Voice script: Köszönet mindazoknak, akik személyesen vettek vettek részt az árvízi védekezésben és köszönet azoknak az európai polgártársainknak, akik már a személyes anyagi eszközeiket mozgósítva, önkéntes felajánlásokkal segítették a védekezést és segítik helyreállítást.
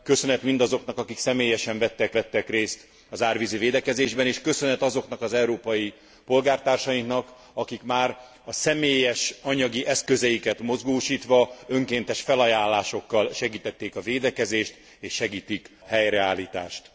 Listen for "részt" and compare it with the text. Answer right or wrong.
right